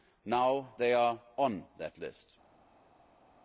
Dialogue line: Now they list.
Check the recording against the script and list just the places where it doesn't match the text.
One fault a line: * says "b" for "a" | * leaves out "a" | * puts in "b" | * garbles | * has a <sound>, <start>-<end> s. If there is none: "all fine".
* puts in "are on that"